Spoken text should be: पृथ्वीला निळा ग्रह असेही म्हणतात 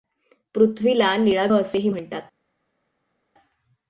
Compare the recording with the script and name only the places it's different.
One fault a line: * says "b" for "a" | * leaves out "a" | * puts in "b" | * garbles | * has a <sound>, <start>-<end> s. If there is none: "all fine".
* leaves out "ग्रह"